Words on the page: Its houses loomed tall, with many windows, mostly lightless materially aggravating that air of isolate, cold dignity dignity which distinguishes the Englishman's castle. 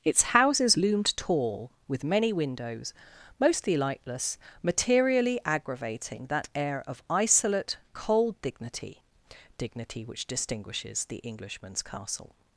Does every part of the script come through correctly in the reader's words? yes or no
yes